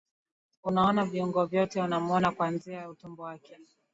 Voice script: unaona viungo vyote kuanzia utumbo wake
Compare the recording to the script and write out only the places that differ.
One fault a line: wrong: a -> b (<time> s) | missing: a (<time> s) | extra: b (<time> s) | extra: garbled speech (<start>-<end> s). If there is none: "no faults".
extra: unamwona (1.8 s)